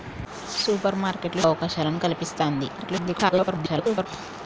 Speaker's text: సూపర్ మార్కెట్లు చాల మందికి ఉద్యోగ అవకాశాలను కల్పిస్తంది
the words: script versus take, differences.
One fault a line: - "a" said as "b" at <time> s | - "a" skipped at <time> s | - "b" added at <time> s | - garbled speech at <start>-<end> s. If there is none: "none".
- "చాల మందికి ఉద్యోగ" skipped at 1.4 s
- garbled speech at 2.8-4.1 s